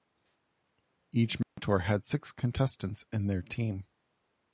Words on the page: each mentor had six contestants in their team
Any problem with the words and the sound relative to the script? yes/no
yes